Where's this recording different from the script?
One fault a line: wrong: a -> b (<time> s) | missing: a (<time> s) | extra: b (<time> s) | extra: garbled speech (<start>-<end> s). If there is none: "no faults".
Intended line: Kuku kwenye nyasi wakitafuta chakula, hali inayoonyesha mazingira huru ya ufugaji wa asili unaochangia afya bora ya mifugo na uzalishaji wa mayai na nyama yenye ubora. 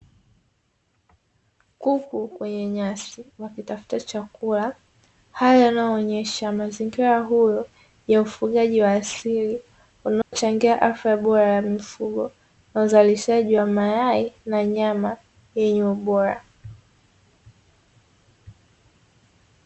no faults